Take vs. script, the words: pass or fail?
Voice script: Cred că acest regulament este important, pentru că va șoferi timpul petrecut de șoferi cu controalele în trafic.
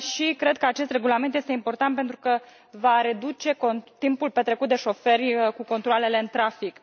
fail